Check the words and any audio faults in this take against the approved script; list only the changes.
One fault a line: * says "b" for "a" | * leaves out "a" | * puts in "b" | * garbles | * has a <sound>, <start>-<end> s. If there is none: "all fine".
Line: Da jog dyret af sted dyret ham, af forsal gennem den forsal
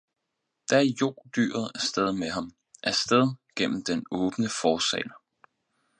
* says "med" for "dyret"
* says "sted" for "forsal"
* puts in "åbne"